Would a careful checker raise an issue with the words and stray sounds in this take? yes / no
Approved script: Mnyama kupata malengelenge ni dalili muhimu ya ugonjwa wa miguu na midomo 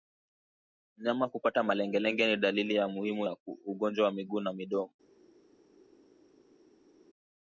no